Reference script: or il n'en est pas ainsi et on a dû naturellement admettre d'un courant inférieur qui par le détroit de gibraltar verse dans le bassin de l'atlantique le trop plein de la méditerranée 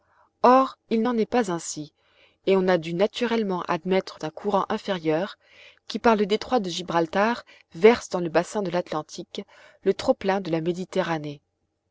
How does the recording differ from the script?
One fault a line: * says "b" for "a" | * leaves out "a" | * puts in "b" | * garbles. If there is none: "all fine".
all fine